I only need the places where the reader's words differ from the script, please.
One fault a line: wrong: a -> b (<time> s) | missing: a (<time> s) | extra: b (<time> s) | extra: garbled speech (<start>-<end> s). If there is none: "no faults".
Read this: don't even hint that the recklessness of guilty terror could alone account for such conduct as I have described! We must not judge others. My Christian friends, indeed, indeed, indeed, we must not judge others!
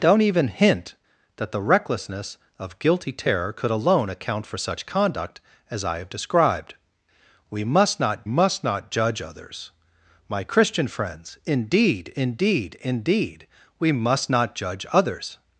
extra: must not (8.2 s)